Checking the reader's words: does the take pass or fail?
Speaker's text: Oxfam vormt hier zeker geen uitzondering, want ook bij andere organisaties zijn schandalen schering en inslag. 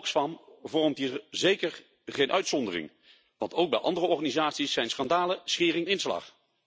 fail